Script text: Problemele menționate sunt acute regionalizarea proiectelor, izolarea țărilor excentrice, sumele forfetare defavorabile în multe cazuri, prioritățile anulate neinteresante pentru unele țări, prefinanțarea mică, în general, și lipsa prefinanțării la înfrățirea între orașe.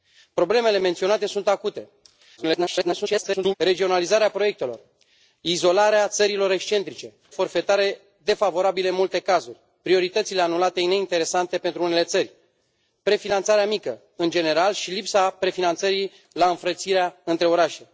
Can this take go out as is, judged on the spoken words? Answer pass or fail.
fail